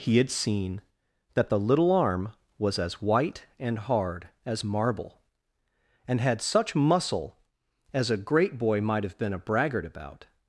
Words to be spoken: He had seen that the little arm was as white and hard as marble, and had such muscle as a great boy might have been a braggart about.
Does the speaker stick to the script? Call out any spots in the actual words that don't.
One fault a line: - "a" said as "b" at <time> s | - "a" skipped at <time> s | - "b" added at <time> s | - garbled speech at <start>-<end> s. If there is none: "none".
none